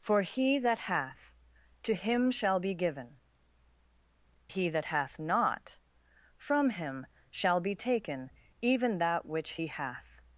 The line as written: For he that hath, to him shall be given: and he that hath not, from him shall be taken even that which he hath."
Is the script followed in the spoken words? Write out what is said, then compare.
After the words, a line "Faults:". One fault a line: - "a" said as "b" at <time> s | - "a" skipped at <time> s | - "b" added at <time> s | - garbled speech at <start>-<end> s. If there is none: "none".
For he that hath, to him shall be given: he that hath not, from him shall be taken even that which he hath."
Faults:
- "and" skipped at 3.2 s